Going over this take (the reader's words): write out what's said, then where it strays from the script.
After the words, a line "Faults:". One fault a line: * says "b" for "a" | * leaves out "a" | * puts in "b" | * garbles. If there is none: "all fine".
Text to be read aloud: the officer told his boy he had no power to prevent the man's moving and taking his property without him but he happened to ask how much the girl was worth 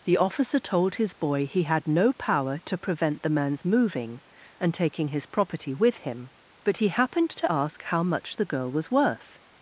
the officer told his boy he had no power to prevent the man's moving and taking his property with him but he happened to ask how much the girl was worth
Faults:
* says "with" for "without"